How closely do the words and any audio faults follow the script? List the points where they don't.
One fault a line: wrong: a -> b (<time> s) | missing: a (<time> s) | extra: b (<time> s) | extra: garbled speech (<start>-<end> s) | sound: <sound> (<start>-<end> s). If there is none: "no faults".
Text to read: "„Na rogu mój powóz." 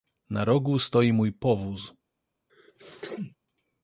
extra: stoi (0.8 s)
sound: sneeze (2.5-3.4 s)